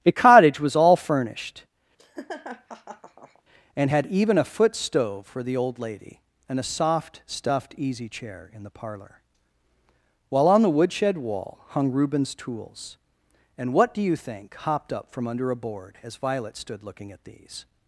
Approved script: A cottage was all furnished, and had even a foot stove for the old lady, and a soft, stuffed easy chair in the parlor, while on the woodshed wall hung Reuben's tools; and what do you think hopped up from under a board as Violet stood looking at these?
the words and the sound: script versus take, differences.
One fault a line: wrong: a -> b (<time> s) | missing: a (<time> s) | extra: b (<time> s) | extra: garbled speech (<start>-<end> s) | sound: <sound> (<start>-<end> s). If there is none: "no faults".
sound: laugh (2.0-3.4 s)